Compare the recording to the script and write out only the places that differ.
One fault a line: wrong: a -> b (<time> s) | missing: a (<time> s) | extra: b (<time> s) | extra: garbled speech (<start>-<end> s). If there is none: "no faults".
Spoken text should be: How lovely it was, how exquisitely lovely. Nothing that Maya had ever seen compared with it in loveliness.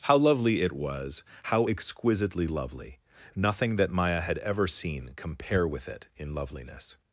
wrong: compared -> compare (5.2 s)